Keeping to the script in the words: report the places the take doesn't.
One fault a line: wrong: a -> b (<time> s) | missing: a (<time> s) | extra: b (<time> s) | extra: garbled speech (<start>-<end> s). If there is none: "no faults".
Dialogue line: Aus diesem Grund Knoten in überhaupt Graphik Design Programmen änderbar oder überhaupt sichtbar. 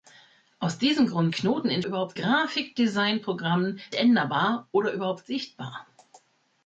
no faults